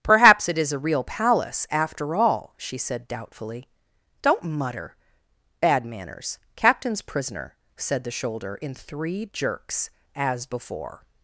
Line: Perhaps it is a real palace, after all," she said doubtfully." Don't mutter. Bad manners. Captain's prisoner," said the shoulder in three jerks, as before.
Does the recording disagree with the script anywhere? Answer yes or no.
no